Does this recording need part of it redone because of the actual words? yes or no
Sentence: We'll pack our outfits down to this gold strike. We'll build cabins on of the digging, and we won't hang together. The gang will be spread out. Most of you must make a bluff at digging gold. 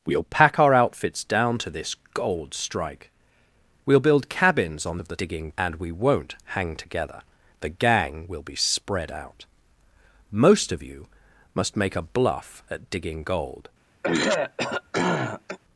no